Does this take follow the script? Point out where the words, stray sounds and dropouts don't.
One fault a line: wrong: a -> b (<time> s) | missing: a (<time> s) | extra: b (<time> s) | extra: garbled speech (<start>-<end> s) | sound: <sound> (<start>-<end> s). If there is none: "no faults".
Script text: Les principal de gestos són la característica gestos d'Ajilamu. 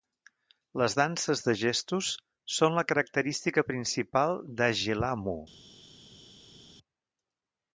wrong: principal -> danses (1.0 s)
wrong: gestos -> principal (3.7 s)